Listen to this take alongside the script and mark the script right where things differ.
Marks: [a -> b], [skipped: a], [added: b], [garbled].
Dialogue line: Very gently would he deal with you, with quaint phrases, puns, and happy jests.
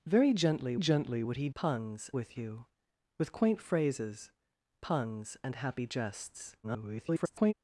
Very gently [added: gently] would he [deal -> puns] with you, with quaint phrases, puns, and happy jests. [garbled]